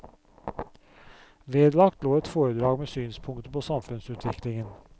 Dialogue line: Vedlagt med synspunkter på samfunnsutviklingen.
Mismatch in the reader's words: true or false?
true